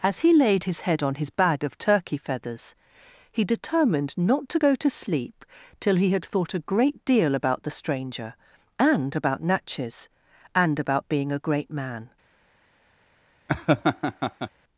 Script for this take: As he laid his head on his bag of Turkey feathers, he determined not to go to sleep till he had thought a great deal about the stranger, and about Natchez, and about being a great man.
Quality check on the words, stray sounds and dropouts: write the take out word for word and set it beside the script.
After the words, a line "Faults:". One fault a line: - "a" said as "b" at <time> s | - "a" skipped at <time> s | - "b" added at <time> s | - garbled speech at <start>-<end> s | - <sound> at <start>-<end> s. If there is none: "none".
As he laid his head on his bag of Turkey feathers, he determined not to go to sleep till he had thought a great deal about the stranger, and about Natchez, and about being a great man.
Faults:
- laugh at 13.5-14.5 s